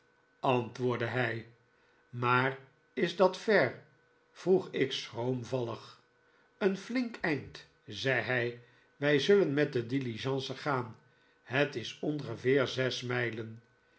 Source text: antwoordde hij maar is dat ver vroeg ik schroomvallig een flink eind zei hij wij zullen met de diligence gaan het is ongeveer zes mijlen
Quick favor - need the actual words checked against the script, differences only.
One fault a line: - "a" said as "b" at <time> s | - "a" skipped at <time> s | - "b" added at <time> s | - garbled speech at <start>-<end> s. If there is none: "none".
none